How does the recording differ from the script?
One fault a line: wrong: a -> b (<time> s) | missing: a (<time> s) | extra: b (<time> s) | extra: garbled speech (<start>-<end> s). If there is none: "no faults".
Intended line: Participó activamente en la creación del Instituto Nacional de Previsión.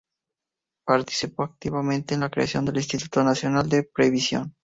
no faults